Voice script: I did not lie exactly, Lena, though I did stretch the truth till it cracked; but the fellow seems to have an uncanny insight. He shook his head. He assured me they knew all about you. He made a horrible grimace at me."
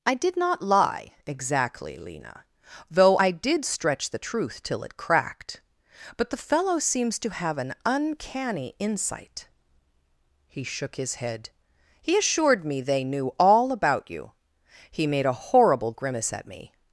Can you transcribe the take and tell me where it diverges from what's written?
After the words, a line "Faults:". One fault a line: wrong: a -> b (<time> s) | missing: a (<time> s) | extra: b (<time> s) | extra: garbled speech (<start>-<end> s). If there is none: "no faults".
I did not lie exactly, Lena, though I did stretch the truth till it cracked; but the fellow seems to have an uncanny insight. He shook his head. He assured me they knew all about you. He made a horrible grimace at me."
Faults:
no faults